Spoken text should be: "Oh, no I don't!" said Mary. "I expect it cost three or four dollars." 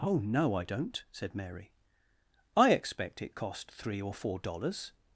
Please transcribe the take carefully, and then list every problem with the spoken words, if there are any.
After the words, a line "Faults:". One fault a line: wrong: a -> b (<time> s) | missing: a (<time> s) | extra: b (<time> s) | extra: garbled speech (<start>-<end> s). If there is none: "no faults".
"Oh, no I don't!" said Mary. "I expect it cost three or four dollars."
Faults:
no faults